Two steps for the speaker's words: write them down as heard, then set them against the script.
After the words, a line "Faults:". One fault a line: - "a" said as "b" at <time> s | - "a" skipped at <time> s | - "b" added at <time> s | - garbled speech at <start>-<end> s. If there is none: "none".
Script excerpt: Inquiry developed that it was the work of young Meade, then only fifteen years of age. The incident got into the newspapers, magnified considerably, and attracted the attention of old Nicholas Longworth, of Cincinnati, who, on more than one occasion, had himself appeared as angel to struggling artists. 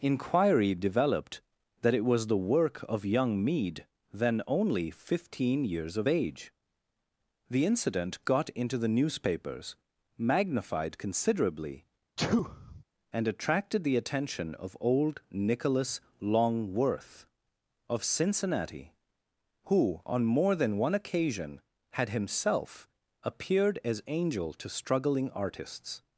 Inquiry developed that it was the work of young Meade, then only fifteen years of age. The incident got into the newspapers, magnified considerably, and attracted the attention of old Nicholas Longworth, of Cincinnati, who, on more than one occasion, had himself appeared as angel to struggling artists.
Faults:
none